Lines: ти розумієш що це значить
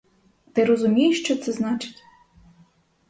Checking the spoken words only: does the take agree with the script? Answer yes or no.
yes